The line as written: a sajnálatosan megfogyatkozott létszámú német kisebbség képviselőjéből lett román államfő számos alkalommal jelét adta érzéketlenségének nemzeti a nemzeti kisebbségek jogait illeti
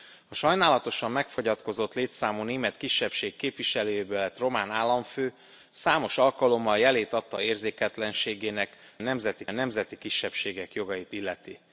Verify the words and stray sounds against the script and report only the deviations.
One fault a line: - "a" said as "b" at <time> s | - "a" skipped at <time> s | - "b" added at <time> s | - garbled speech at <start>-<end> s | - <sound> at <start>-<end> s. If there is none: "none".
none